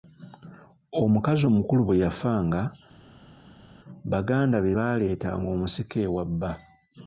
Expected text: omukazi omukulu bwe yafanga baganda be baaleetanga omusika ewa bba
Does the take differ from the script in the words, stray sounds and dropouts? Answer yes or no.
no